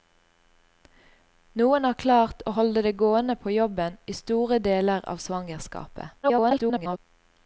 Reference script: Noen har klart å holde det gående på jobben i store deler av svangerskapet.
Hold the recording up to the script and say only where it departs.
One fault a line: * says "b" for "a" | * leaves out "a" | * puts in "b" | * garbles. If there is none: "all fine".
* garbles